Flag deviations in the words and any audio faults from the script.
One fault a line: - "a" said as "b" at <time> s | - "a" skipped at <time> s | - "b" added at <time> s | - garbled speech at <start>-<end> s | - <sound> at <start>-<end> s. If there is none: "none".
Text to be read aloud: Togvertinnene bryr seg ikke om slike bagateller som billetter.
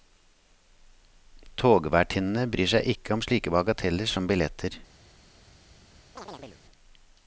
- chirp at 6.2-6.6 s